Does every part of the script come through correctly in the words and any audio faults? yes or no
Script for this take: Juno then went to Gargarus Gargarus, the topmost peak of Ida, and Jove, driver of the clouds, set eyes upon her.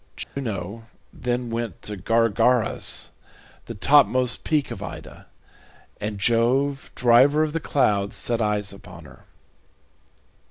no